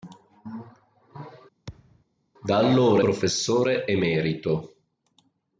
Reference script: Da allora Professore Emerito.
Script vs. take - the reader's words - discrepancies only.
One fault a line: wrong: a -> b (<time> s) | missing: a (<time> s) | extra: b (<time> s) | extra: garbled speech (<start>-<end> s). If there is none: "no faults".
no faults